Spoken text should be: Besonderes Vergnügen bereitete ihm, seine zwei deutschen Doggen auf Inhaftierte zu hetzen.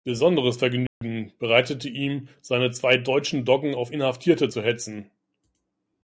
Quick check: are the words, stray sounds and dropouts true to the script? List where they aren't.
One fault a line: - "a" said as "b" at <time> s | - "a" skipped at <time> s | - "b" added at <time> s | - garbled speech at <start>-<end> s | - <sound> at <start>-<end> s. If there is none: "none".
- dropout at 0.9-1.0 s